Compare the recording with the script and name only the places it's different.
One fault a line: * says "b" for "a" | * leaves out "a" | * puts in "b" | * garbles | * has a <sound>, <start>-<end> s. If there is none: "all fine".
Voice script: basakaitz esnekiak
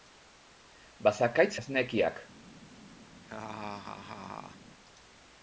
* has a laugh, 3.2-4.6 s